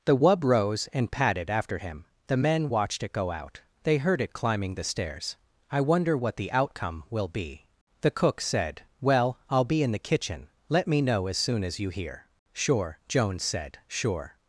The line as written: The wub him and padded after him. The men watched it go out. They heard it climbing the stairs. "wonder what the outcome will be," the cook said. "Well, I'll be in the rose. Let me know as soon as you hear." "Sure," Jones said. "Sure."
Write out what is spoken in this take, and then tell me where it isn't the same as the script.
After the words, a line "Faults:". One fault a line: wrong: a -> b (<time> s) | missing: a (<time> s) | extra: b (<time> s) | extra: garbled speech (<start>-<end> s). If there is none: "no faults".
The wub rose and padded after him. The men watched it go out. They heard it climbing the stairs. "I wonder what the outcome will be," the cook said. "Well, I'll be in the kitchen. Let me know as soon as you hear." "Sure," Jones said. "Sure."
Faults:
wrong: him -> rose (0.4 s)
extra: I (5.7 s)
wrong: rose -> kitchen (10.1 s)